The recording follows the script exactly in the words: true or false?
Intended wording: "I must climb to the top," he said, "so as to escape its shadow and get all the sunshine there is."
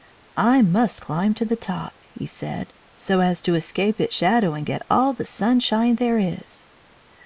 true